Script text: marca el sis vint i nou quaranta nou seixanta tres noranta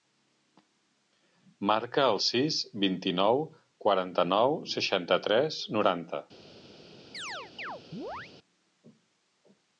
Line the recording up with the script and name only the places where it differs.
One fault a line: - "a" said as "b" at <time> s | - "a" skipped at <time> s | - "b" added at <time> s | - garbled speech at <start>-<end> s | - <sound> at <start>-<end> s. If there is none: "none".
- chirp at 7.1-8.3 s